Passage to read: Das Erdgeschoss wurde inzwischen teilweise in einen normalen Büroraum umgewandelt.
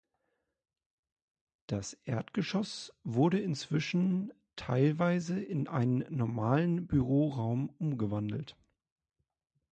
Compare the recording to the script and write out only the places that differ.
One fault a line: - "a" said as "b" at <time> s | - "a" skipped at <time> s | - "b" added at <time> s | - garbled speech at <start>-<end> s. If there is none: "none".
none